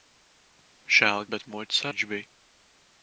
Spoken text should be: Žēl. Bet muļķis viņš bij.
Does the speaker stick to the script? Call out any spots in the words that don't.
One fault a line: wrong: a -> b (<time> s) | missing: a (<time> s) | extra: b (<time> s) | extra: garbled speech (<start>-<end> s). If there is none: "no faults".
no faults